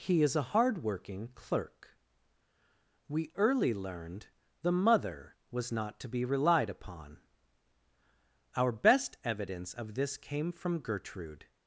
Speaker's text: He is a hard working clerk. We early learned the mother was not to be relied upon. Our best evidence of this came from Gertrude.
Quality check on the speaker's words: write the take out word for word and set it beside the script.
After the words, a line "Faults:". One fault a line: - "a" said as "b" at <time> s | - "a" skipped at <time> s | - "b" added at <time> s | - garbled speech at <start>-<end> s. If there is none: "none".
He is a hard working clerk. We early learned the mother was not to be relied upon. Our best evidence of this came from Gertrude.
Faults:
none